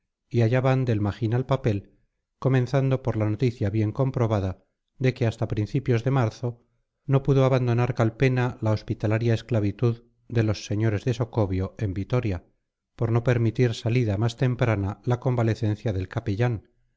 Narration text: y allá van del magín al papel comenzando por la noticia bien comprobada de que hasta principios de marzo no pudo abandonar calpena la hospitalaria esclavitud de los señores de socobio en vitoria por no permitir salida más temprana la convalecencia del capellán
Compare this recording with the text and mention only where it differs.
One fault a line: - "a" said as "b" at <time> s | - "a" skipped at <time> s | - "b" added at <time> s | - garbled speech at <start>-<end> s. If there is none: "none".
none